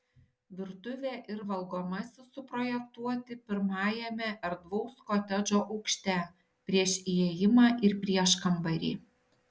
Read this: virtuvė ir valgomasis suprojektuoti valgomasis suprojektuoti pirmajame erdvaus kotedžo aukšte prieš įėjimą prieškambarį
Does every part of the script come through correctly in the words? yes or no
no